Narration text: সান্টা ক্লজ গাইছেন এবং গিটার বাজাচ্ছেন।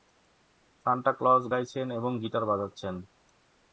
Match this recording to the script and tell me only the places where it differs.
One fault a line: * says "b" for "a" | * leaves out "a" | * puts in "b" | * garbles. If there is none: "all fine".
all fine